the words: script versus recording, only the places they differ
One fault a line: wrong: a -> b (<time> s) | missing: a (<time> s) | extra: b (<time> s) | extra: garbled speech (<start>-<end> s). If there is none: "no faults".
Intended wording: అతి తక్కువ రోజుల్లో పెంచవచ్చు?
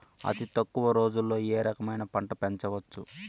extra: ఏ రకమైన పంట (1.5 s)